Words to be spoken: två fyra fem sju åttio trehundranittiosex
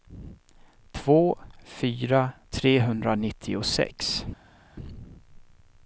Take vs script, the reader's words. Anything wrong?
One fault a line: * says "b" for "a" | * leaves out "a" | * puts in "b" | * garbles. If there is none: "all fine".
* leaves out "fem sju åttio"